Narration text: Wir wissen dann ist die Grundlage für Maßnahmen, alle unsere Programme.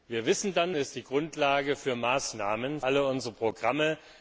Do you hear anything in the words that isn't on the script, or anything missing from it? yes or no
no